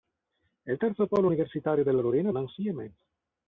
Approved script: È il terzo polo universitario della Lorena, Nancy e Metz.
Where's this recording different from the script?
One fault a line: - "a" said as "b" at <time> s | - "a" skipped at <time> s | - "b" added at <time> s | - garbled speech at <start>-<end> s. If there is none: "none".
none